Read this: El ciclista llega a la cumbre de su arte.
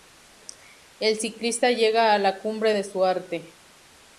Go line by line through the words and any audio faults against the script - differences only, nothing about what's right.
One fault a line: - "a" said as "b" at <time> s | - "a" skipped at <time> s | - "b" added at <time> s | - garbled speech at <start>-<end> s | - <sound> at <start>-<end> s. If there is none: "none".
none